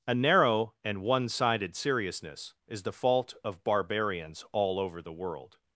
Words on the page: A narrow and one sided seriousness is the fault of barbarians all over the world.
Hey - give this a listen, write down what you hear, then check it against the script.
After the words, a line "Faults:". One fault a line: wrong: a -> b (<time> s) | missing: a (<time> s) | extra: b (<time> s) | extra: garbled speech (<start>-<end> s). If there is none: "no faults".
A narrow and one sided seriousness is the fault of barbarians all over the world.
Faults:
no faults